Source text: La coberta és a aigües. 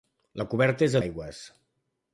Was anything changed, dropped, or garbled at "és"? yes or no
no